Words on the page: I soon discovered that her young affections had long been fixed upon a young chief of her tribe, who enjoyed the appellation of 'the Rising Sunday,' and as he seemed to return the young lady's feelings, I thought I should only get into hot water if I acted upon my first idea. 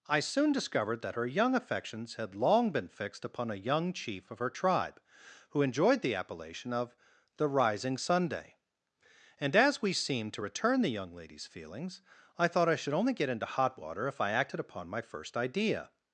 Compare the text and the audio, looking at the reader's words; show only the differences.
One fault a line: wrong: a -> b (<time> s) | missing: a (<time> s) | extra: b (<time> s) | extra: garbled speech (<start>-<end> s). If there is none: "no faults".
wrong: he -> we (9.8 s)